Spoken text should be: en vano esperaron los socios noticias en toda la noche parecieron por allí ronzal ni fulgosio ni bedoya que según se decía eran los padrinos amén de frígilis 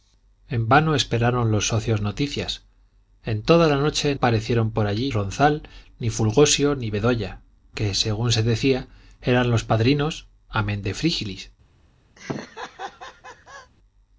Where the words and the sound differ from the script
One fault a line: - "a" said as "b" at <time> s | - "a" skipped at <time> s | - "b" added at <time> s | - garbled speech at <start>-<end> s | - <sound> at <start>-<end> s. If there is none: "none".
- laugh at 12.2-13.7 s